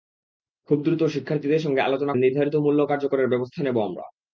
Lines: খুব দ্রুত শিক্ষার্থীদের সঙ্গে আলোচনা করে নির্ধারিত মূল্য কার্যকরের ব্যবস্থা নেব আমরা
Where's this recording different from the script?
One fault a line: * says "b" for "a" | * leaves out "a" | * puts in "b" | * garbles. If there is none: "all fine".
* leaves out "করে"